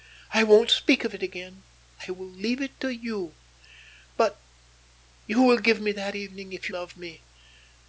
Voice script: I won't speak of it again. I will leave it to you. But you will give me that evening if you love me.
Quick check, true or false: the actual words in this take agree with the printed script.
false